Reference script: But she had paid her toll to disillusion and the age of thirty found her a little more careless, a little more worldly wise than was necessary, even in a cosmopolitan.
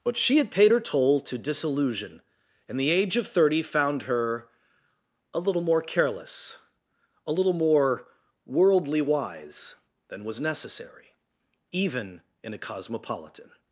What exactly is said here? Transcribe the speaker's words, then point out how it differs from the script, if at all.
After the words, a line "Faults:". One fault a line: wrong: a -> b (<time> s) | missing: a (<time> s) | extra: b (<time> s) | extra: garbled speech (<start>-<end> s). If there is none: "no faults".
But she had paid her toll to disillusion and the age of thirty found her a little more careless, a little more worldly wise than was necessary, even in a cosmopolitan.
Faults:
no faults